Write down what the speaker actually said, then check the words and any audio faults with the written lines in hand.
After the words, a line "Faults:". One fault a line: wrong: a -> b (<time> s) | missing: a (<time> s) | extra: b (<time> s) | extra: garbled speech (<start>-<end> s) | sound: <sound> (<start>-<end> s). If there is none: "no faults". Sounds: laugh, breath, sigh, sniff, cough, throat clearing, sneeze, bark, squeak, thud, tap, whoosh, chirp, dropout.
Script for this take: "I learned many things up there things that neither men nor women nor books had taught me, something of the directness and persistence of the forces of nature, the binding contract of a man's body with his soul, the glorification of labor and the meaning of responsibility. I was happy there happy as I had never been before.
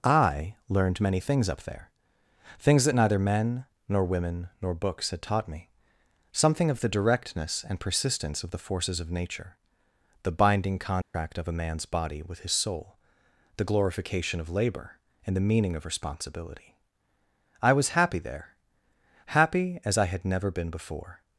"I learned many things up there things that neither men nor women nor books had taught me, something of the directness and persistence of the forces of nature, the binding contract of a man's body with his soul, the glorification of labor and the meaning of responsibility. I was happy there happy as I had never been before.
Faults:
sound: dropout (11.0-11.1 s)